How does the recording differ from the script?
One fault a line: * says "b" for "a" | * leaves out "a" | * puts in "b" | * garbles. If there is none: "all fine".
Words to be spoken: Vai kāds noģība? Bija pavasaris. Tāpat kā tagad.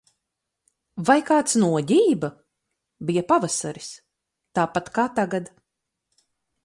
all fine